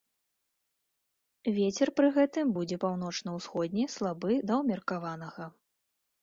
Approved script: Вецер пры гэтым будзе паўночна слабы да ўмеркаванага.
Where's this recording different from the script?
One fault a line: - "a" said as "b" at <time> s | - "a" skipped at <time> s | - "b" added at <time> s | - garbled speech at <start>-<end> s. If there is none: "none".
- "ўсходні" added at 3.4 s